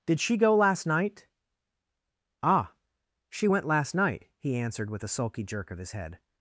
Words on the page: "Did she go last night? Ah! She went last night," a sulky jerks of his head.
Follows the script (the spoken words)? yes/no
no